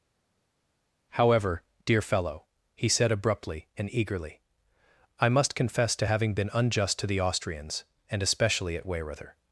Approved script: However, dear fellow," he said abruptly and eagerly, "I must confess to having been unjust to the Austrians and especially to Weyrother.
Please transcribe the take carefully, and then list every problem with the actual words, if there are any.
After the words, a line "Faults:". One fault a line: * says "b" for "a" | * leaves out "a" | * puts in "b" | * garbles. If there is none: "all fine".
However, dear fellow," he said abruptly and eagerly, "I must confess to having been unjust to the Austrians and especially at Weyrother.
Faults:
* says "at" for "to"